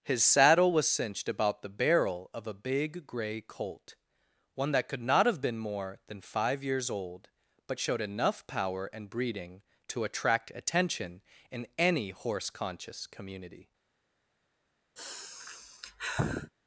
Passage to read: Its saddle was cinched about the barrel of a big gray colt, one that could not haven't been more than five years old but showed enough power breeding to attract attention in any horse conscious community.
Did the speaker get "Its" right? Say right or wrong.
wrong